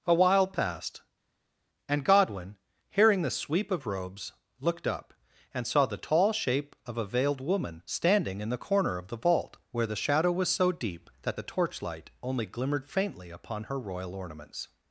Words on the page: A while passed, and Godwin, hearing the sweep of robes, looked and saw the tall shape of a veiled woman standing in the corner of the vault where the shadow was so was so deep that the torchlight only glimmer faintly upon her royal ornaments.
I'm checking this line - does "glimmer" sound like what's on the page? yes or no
no